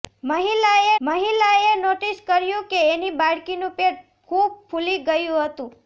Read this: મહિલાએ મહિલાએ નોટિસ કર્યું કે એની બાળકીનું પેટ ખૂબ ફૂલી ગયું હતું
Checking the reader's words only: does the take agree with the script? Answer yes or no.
yes